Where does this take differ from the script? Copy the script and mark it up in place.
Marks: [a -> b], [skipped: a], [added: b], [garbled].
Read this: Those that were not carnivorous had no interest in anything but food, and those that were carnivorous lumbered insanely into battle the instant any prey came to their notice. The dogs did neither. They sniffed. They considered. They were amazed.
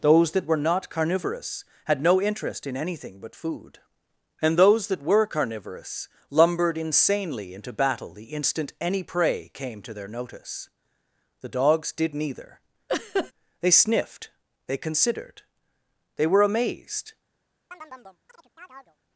Those that were not carnivorous had no interest in anything but food, and those that were carnivorous lumbered insanely into battle the instant any prey came to their notice. The dogs did neither. They sniffed. They considered. They were amazed.